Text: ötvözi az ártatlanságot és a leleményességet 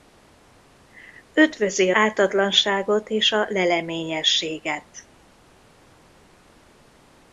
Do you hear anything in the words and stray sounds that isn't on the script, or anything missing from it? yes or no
yes